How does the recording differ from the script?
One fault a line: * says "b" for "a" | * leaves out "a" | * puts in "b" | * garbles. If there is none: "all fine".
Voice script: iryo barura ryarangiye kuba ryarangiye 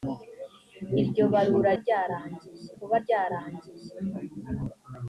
all fine